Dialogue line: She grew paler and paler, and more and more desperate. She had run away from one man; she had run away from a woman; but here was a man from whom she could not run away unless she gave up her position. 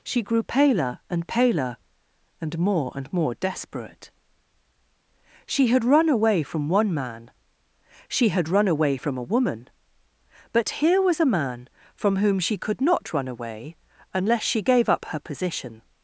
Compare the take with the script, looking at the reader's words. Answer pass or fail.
pass